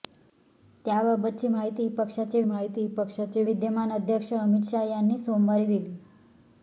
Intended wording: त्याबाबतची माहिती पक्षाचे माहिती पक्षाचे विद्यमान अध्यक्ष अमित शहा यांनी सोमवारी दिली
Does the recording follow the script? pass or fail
pass